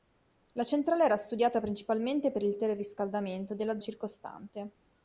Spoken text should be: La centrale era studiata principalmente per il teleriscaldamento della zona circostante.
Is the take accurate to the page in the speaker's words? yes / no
no